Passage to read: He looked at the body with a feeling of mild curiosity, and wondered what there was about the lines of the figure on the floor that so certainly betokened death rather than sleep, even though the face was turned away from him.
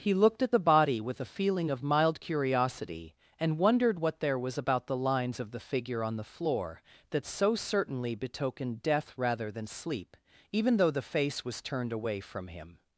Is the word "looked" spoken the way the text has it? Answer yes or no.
yes